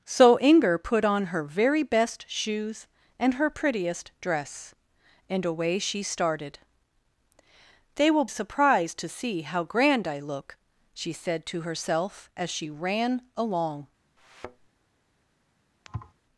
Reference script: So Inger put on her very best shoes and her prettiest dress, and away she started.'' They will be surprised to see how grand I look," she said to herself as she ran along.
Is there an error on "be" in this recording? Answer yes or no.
yes